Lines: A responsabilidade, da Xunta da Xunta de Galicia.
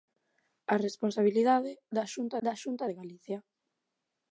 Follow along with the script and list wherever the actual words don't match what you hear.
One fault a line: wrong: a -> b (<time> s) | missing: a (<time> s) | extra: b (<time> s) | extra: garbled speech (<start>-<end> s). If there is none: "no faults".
no faults